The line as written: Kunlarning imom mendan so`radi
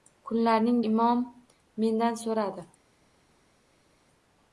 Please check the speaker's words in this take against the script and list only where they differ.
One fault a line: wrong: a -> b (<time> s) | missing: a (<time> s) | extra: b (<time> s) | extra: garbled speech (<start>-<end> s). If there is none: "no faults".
no faults